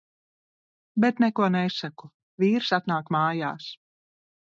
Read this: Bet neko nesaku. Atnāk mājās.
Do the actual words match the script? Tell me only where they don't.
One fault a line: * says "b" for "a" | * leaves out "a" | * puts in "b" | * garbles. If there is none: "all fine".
* puts in "Vīrs"